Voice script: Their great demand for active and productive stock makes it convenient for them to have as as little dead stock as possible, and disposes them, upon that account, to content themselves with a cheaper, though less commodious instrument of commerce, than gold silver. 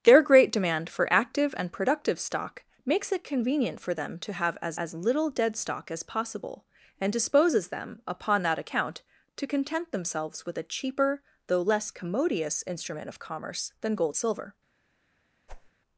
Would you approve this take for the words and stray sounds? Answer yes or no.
no